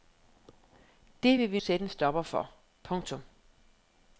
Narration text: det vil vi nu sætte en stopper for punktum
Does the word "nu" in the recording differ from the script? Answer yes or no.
yes